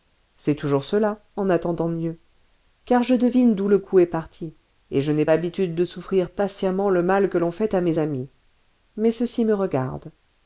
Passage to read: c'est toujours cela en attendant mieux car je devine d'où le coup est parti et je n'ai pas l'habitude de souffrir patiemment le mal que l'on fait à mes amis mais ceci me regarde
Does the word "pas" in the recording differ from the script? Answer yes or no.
yes